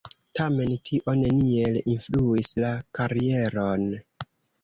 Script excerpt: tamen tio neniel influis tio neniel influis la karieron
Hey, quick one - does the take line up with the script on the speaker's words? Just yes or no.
no